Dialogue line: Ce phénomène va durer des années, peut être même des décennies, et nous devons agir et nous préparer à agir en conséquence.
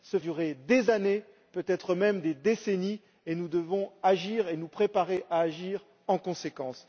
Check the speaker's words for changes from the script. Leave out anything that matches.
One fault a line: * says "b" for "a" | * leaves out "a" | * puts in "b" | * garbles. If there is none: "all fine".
* leaves out "phénomène va"